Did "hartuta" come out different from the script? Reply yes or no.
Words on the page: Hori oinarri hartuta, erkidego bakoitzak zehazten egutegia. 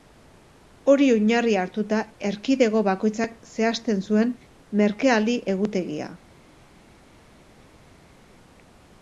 no